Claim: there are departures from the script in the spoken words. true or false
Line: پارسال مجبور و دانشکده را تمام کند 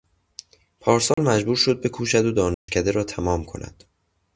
true